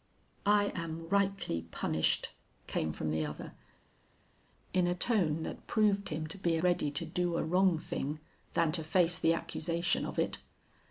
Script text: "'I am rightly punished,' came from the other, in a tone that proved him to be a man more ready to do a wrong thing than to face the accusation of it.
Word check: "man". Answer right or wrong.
wrong